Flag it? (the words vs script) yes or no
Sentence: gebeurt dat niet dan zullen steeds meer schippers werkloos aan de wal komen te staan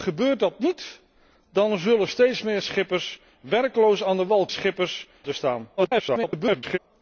yes